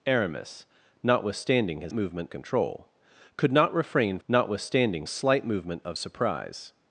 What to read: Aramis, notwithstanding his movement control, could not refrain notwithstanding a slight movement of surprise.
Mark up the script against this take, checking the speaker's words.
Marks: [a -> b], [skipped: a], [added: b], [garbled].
Aramis, notwithstanding his movement control, could not refrain notwithstanding a slight movement of surprise.